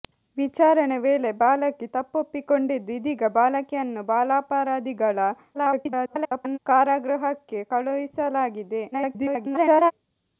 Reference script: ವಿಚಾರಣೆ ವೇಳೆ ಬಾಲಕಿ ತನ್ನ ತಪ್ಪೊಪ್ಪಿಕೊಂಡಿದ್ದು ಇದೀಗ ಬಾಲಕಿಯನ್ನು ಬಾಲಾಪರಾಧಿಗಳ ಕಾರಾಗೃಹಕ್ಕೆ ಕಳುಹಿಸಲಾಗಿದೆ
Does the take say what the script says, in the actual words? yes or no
no